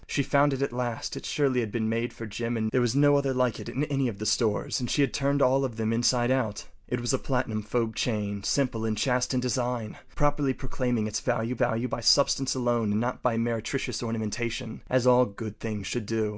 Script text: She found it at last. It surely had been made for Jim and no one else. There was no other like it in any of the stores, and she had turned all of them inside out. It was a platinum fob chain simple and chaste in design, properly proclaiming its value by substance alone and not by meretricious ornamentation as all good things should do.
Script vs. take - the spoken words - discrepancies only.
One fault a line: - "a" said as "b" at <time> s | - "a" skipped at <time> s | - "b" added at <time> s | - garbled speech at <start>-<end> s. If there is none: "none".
- "no one else" skipped at 2.7 s
- "value" added at 11.5 s